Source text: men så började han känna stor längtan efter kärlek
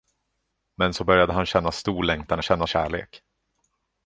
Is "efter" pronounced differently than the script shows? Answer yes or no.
yes